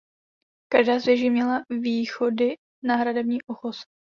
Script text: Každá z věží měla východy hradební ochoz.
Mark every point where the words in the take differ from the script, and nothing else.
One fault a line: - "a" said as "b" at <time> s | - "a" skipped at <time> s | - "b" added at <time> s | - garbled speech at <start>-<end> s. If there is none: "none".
- "na" added at 2.8 s